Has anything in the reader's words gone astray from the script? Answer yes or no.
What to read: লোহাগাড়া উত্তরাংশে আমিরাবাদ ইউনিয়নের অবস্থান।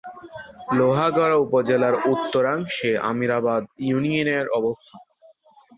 yes